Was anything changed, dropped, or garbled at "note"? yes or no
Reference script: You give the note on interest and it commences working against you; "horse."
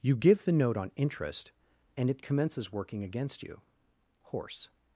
no